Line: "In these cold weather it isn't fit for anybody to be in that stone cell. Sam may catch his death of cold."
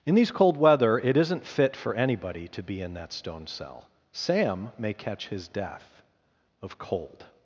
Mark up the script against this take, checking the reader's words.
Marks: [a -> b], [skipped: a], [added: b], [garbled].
"In these cold weather it isn't fit for anybody to be in that stone cell. Sam may catch his death of cold."